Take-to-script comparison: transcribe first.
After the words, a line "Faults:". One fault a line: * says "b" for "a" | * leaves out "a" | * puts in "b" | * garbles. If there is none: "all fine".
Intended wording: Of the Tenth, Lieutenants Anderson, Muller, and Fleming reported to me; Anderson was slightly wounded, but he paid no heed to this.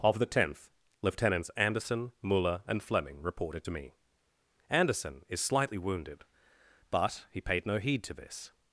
Of the Tenth, Lieutenants Anderson, Muller, and Fleming reported to me; Anderson is slightly wounded, but he paid no heed to this.
Faults:
* says "is" for "was"